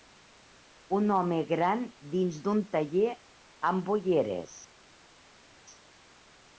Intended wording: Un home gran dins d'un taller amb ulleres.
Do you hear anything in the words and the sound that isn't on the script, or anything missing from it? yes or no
no